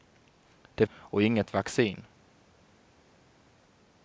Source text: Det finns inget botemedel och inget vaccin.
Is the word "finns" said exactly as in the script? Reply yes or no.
no